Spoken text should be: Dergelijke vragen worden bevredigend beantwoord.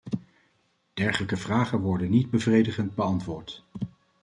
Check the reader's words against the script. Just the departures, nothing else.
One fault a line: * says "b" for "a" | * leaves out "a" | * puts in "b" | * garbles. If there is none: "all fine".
* puts in "niet"